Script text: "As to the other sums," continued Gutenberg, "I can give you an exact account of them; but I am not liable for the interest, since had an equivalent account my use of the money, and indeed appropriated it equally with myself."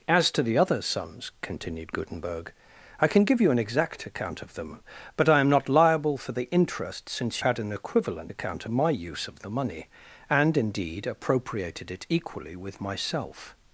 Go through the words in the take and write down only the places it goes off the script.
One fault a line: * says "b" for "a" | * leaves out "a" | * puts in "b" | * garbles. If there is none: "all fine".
all fine